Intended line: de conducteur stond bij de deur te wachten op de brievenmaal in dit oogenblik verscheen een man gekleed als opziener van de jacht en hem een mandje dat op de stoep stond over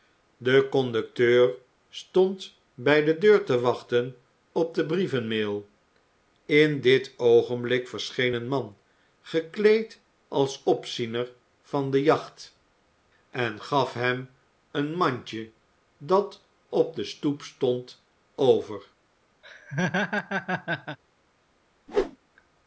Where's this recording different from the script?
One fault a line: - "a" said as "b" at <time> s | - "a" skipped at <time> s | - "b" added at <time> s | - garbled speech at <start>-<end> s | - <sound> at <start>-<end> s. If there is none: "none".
- "gaf" added at 13.6 s
- laugh at 19.4-21.0 s
- whoosh at 21.9-22.2 s